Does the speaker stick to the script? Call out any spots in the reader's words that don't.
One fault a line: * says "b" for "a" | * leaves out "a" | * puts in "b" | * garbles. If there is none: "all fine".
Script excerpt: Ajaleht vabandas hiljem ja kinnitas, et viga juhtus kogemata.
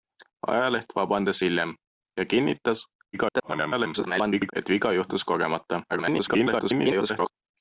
* garbles
* garbles